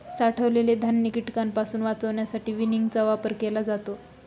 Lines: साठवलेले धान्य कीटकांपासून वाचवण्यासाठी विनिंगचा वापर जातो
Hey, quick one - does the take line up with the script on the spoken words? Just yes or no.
no